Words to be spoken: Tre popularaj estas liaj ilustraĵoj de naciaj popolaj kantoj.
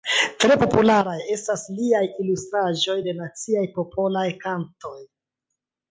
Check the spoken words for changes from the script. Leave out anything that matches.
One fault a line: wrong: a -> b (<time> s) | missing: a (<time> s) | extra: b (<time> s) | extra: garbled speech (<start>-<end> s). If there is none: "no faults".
no faults